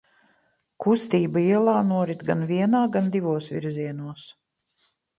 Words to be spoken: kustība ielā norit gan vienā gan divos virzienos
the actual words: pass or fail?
pass